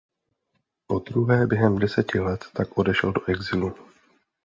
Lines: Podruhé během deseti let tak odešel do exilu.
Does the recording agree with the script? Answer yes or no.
yes